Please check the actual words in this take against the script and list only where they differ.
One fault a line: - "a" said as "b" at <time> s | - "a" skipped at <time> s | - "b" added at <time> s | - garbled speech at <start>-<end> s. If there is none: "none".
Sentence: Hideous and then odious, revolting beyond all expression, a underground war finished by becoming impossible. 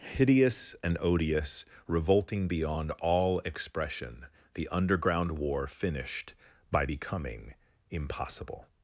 - "then" skipped at 1.0 s
- "a" said as "the" at 4.5 s